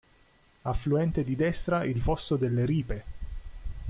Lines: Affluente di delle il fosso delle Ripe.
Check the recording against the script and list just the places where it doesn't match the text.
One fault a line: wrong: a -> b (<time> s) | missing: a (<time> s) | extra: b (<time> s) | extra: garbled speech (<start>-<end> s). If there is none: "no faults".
wrong: delle -> destra (1.4 s)